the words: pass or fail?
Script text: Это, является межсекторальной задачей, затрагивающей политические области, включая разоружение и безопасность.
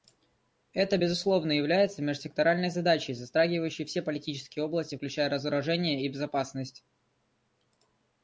fail